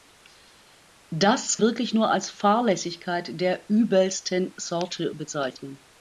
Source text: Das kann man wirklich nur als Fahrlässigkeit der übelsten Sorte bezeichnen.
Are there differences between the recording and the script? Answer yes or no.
yes